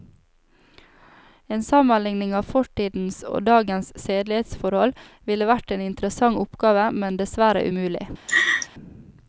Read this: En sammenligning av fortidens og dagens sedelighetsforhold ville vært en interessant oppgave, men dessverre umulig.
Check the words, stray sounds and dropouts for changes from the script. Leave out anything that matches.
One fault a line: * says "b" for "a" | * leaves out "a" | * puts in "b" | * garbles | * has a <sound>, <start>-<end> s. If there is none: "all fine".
* has a laugh, 8.3-8.7 s